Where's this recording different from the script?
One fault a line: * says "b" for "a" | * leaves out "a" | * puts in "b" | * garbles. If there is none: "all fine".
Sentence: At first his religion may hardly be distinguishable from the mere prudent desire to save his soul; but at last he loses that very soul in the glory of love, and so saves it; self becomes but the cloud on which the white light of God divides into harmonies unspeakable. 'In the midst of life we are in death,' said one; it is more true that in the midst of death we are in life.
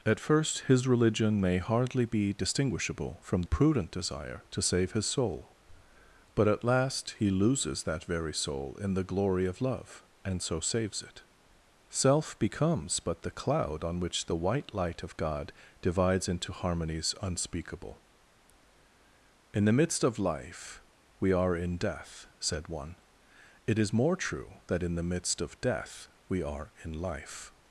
* leaves out "the mere"